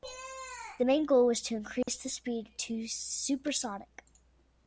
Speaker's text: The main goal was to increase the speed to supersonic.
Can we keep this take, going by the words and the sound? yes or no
no